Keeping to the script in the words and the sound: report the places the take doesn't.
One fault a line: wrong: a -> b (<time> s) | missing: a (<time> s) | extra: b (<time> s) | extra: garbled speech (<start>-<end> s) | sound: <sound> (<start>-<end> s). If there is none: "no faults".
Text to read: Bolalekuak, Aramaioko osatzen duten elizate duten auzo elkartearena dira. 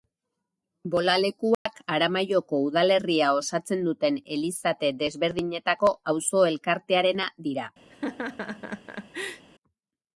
sound: dropout (1.5-1.7 s)
extra: udalerria (2.7 s)
wrong: duten -> desberdinetako (5.0 s)
sound: laugh (7.9-9.4 s)